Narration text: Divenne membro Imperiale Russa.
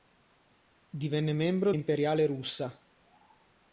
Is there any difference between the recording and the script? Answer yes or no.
no